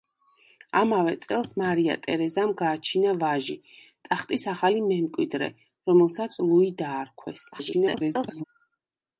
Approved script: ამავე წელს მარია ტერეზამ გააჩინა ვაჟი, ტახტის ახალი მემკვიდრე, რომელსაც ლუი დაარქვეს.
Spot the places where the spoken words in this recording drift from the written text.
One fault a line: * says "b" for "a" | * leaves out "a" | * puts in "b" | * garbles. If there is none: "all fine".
* garbles